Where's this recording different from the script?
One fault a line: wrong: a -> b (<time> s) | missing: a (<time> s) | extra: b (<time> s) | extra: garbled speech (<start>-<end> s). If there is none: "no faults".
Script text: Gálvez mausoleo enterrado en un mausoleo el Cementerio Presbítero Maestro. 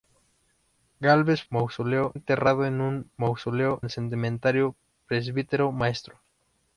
no faults